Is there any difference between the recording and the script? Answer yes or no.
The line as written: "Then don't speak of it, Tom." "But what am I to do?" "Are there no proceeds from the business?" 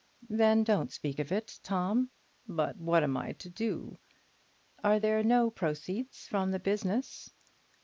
no